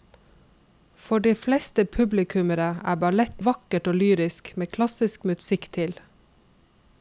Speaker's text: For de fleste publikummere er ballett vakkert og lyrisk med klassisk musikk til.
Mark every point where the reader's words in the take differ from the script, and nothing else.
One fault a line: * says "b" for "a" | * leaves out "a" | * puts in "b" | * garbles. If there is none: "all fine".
all fine